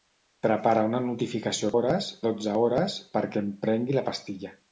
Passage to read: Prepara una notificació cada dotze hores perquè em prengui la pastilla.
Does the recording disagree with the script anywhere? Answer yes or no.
yes